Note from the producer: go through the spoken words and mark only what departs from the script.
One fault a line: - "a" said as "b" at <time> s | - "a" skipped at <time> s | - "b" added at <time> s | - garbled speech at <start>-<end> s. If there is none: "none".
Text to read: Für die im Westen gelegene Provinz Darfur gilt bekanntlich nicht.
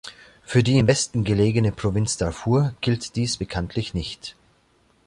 - "dies" added at 3.2 s